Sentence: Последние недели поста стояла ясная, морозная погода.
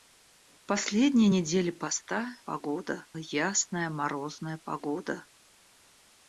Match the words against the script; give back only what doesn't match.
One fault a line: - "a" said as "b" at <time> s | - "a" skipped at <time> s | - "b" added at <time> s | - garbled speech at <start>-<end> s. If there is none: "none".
- "стояла" said as "погода" at 2.4 s